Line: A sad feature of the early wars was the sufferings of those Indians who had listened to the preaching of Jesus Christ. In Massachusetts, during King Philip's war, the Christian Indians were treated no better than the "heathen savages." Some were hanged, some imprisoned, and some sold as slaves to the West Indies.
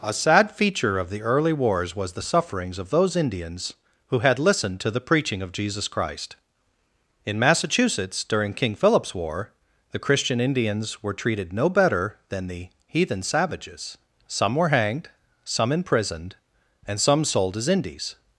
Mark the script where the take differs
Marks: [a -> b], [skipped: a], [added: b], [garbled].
A sad feature of the early wars was the sufferings of those Indians who had listened to the preaching of Jesus Christ. In Massachusetts, during King Philip's war, the Christian Indians were treated no better than the "heathen savages." Some were hanged, some imprisoned, and some sold as [skipped: slaves to the West] Indies.